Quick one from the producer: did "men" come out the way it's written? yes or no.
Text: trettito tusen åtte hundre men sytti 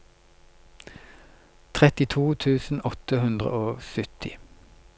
no